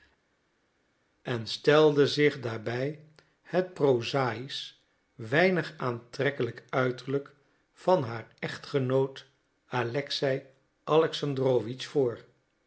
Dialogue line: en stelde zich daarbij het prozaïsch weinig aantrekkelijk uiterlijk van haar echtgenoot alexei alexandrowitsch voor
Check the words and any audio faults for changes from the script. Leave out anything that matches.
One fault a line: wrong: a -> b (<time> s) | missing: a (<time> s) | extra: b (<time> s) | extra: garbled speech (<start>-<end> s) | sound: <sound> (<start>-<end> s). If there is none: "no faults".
no faults